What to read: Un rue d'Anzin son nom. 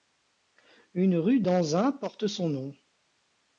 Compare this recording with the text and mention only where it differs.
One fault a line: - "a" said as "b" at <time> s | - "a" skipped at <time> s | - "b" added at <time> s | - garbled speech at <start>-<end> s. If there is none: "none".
- "Un" said as "Une" at 0.9 s
- "porte" added at 1.9 s